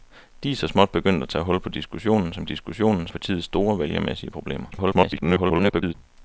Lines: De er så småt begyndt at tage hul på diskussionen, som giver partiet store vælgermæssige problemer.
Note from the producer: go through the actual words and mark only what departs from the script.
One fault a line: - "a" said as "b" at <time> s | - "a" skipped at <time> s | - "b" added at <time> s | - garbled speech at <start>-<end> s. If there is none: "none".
- "giver" said as "diskussionen" at 2.4 s
- garbled speech at 4.7-5.9 s